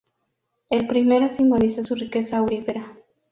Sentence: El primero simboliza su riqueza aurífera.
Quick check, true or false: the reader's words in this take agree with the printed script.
true